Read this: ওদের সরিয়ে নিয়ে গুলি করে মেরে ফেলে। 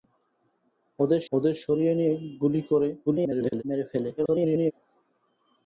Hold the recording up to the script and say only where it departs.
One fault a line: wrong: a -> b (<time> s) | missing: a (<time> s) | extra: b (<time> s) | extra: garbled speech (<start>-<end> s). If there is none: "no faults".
extra: ওদের (1.3 s)
extra: garbled speech (3.1-3.6 s)
extra: garbled speech (4.2-4.7 s)